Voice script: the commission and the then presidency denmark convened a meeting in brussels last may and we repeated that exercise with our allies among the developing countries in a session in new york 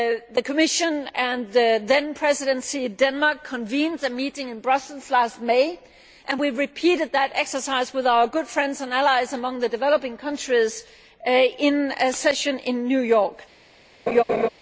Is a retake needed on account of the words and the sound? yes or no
yes